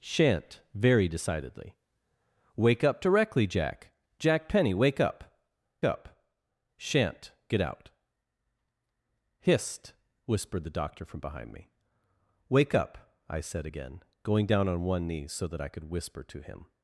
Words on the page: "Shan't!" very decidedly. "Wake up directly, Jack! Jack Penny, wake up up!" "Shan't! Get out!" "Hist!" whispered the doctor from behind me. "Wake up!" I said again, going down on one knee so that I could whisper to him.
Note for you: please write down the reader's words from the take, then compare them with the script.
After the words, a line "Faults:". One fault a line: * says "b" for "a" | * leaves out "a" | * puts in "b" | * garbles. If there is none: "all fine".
"Shan't!" very decidedly. "Wake up directly, Jack! Jack Penny, wake up up!" "Shan't! Get out!" "Hist!" whispered the doctor from behind me. "Wake up!" I said again, going down on one knee so that I could whisper to him.
Faults:
all fine